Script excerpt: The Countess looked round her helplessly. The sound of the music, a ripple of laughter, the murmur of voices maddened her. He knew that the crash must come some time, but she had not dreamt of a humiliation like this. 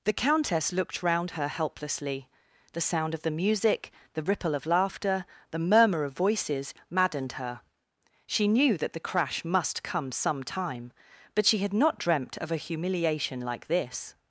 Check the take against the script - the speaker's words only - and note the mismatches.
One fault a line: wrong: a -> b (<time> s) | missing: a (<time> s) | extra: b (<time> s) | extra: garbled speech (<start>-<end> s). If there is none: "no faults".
wrong: a -> the (4.1 s)
wrong: He -> She (8.2 s)